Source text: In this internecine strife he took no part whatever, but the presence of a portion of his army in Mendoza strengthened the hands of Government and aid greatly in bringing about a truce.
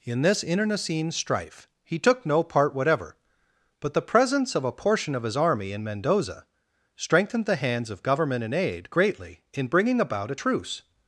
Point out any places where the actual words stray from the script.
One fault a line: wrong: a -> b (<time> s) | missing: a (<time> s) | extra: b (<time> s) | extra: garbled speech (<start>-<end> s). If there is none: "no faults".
no faults